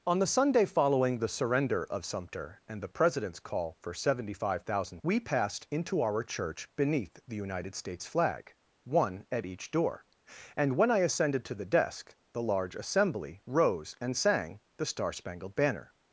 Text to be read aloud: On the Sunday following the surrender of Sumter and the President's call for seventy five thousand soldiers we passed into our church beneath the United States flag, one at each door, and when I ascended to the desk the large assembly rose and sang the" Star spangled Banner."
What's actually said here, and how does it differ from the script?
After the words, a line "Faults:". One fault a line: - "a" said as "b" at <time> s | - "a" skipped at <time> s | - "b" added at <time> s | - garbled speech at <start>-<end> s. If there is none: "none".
On the Sunday following the surrender of Sumter and the President's call for seventy five thousand we passed into our church beneath the United States flag, one at each door, and when I ascended to the desk the large assembly rose and sang the" Star spangled Banner."
Faults:
- "soldiers" skipped at 5.0 s